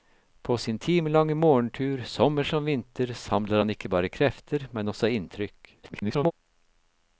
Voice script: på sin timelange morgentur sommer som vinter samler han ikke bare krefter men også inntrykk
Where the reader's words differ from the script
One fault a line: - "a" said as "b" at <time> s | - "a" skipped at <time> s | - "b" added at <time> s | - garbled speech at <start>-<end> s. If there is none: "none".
- garbled speech at 5.8-6.3 s